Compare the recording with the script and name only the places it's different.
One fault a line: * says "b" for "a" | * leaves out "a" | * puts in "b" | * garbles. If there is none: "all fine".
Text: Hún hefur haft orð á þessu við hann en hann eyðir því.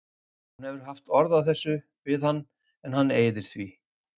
all fine